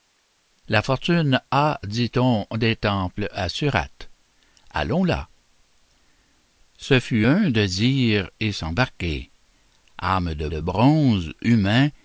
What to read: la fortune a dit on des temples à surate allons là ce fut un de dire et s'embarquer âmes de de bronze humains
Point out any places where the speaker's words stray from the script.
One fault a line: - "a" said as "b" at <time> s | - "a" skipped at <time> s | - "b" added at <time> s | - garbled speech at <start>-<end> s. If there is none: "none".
none